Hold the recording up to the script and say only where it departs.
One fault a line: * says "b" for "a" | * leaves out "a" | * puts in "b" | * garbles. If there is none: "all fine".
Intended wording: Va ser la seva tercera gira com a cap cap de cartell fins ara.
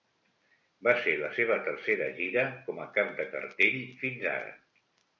* leaves out "cap"